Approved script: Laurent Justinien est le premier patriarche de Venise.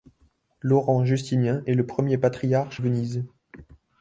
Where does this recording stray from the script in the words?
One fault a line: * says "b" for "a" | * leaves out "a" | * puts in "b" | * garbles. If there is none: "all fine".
* leaves out "de"